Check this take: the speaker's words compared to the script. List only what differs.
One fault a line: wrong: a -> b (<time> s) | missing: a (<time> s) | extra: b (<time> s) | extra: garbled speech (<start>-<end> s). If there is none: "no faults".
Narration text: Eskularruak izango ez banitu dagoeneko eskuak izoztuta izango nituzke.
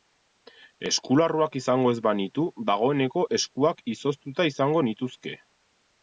no faults